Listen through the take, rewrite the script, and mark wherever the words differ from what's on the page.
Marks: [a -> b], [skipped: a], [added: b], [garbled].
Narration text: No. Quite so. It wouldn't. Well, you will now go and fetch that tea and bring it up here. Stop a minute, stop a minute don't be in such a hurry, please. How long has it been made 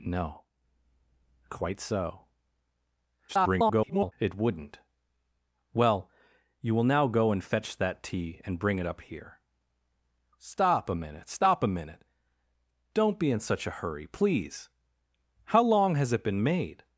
No. Quite so. [garbled] It wouldn't. Well, you will now go and fetch that tea and bring it up here. Stop a minute, stop a minute don't be in such a hurry, please. How long has it been made